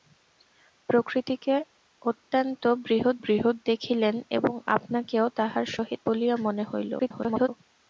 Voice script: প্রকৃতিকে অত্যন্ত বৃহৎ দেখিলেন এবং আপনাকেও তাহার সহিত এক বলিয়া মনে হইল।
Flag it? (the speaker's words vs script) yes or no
yes